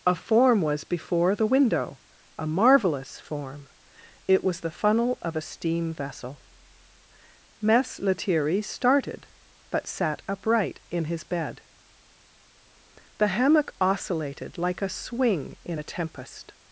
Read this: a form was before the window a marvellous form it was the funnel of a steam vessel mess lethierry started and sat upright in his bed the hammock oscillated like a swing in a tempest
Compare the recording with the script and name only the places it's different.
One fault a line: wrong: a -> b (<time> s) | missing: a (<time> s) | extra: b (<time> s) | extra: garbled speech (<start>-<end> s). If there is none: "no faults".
wrong: and -> but (9.7 s)